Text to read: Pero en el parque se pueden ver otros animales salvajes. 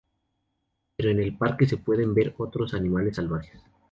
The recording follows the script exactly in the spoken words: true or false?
true